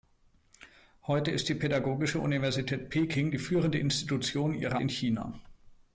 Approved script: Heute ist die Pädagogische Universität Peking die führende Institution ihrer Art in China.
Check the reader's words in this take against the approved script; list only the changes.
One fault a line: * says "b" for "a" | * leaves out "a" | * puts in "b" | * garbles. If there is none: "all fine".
* leaves out "Art"